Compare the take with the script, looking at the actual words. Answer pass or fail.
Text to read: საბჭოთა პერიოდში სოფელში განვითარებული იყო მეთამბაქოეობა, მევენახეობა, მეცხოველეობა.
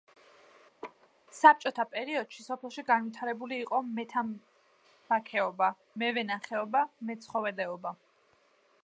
pass